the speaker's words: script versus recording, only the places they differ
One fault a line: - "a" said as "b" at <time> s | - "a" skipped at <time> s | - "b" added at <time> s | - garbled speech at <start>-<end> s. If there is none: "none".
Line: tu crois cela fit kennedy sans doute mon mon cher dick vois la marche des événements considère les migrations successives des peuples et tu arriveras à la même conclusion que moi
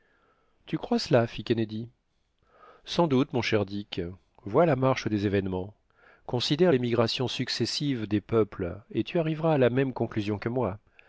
- "mon" skipped at 3.4 s